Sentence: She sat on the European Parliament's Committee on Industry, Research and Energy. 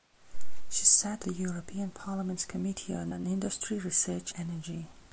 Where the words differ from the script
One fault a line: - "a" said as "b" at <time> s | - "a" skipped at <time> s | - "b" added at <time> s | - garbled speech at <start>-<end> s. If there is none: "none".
- "on" skipped at 1.3 s
- "on" added at 3.1 s
- "and" skipped at 4.3 s